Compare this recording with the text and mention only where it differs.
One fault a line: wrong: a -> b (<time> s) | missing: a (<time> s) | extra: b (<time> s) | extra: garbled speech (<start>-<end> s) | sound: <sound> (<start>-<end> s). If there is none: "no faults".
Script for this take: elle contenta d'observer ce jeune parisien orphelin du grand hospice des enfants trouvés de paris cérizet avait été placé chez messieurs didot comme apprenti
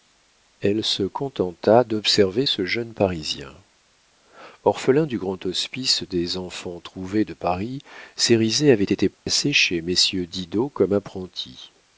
extra: se (0.8 s)
sound: dropout (9.1-9.3 s)